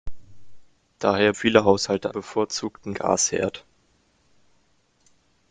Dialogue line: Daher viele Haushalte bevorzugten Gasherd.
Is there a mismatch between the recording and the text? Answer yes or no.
no